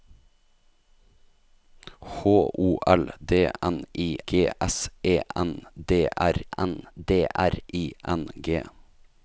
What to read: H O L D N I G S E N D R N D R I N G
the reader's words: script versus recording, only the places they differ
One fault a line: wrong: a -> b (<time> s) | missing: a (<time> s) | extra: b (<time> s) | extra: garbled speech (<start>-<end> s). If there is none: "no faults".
no faults